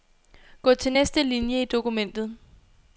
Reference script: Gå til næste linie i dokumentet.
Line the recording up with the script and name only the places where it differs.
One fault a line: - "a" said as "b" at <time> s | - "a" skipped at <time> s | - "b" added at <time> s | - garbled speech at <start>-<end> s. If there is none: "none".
none